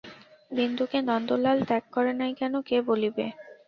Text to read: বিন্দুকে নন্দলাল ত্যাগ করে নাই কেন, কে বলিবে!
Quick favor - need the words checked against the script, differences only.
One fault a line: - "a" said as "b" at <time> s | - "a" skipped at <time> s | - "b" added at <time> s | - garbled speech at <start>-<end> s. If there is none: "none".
none